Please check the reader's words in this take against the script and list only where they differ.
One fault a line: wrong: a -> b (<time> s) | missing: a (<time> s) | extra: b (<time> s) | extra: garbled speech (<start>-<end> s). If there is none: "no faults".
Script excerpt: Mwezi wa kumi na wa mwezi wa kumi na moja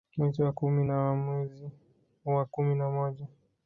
no faults